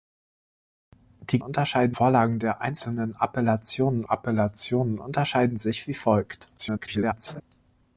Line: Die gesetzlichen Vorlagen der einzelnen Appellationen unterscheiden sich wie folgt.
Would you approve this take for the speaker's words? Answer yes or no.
no